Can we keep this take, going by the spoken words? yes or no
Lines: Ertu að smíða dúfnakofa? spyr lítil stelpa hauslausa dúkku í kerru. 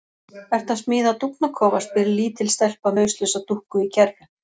yes